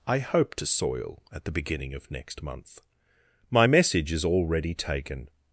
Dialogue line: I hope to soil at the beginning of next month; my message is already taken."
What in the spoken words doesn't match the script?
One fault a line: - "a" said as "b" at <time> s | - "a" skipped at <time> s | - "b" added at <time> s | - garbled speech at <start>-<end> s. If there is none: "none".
none